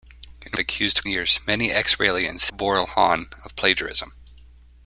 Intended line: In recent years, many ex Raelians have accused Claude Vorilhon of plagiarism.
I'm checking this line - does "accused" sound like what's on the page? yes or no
no